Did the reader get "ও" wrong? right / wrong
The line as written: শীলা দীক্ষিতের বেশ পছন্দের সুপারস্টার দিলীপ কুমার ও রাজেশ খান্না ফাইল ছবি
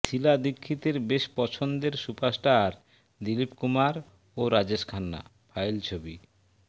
right